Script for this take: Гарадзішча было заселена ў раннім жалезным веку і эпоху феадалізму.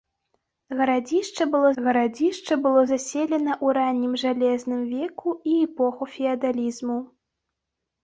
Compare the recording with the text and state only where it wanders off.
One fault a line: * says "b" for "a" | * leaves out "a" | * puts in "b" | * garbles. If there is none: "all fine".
* puts in "гарадзішча было"